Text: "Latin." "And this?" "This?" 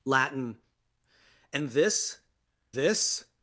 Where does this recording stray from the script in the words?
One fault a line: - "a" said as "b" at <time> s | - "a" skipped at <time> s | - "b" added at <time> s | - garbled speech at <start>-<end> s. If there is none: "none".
none